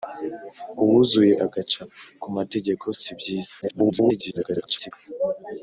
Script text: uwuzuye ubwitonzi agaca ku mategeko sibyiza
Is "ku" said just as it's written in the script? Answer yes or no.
yes